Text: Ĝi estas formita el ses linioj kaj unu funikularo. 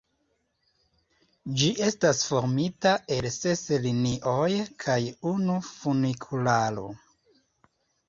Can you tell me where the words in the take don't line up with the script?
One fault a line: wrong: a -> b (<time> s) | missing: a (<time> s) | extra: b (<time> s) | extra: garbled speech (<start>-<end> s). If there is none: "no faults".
no faults